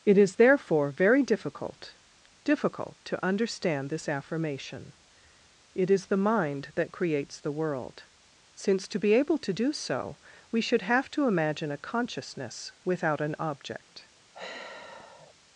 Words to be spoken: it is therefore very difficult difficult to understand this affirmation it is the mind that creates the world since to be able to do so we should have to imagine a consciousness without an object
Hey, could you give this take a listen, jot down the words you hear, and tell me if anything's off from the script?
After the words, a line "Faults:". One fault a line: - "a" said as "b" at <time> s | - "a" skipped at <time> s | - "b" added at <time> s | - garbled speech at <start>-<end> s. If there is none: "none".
it is therefore very difficult difficult to understand this affirmation it is the mind that creates the world since to be able to do so we should have to imagine a consciousness without an object
Faults:
none